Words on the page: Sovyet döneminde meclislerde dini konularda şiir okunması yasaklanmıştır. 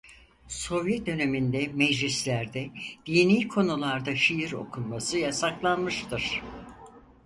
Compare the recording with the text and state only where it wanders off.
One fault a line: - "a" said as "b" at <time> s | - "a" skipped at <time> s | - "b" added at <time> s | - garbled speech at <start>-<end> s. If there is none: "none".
none